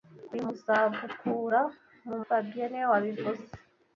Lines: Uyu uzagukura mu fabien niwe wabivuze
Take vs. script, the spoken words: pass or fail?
pass